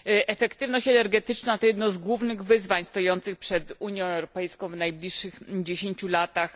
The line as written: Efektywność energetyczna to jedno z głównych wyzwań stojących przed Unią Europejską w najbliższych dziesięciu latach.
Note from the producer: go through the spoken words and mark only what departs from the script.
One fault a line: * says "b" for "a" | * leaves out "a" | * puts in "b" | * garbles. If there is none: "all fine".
all fine